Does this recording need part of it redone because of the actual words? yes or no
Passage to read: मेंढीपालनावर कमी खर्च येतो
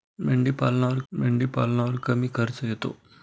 yes